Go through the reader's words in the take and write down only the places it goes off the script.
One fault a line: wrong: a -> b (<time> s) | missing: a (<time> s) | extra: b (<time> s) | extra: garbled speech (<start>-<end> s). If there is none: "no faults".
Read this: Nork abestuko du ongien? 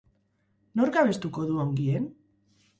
no faults